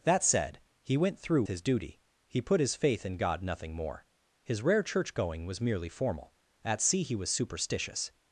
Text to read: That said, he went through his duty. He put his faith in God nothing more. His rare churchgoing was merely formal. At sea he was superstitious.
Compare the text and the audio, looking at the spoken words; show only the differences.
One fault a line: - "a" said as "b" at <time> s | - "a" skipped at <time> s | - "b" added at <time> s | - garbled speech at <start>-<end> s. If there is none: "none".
none